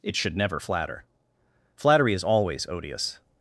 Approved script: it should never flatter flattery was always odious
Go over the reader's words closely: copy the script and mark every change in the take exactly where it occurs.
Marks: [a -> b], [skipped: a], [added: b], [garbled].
it should never flatter flattery [was -> is] always odious